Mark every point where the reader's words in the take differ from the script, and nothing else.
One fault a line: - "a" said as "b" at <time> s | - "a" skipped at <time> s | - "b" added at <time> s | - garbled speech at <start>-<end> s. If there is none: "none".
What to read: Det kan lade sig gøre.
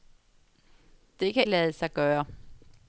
none